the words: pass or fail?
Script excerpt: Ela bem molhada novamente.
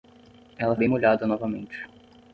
pass